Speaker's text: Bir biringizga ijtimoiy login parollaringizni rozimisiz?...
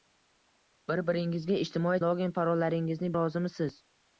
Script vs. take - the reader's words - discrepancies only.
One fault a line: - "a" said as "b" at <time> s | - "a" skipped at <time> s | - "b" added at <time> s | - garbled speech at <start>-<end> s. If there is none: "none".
none